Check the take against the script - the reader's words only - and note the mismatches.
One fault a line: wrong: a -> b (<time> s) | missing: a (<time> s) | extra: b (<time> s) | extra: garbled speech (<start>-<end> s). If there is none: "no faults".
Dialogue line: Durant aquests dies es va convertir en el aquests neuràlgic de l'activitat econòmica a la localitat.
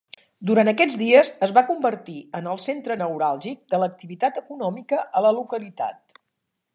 wrong: aquests -> centre (2.7 s)